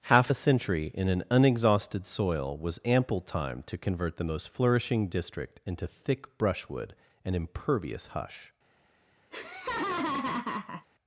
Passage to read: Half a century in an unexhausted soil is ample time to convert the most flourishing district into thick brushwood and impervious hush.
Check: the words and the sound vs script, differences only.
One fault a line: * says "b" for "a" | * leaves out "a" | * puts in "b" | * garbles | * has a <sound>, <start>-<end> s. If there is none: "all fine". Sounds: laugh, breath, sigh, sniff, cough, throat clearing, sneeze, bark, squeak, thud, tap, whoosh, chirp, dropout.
* says "was" for "is"
* has a laugh, 9.3-10.9 s